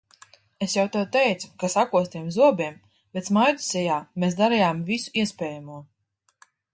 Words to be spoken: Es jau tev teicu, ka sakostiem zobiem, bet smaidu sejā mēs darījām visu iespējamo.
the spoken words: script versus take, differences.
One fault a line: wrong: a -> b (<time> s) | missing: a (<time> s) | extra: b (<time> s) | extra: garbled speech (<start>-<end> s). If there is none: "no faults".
no faults